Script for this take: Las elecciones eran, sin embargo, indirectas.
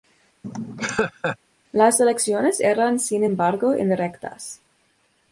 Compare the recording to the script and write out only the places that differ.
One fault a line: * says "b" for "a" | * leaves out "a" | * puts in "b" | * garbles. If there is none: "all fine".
all fine